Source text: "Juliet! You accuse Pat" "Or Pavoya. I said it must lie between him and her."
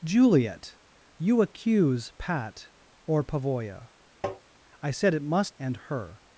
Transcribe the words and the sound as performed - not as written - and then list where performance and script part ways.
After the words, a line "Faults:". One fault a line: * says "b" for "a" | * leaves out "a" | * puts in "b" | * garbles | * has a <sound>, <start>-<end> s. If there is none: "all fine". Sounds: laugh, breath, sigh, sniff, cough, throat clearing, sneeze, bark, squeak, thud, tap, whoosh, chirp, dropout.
"Juliet! You accuse Pat" "Or Pavoya. I said it must and her."
Faults:
* has a tap, 4.2-4.4 s
* leaves out "lie between him"